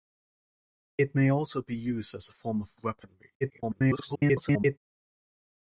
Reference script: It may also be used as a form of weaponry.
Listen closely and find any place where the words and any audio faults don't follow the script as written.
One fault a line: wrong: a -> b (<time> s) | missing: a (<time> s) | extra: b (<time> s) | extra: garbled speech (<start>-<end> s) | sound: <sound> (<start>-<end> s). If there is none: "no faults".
extra: garbled speech (3.4-4.8 s)